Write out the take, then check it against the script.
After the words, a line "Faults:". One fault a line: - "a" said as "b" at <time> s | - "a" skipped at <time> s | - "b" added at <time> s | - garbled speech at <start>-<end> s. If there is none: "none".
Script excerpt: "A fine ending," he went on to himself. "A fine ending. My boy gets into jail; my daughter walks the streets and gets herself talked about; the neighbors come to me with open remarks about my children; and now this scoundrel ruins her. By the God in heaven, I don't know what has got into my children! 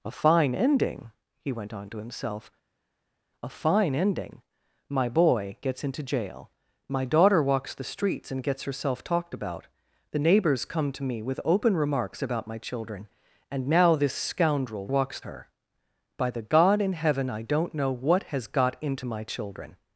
"A fine ending," he went on to himself. "A fine ending. My boy gets into jail; my daughter walks the streets and gets herself talked about; the neighbors come to me with open remarks about my children; and now this scoundrel walks her. By the God in heaven, I don't know what has got into my children!
Faults:
- "ruins" said as "walks" at 14.9 s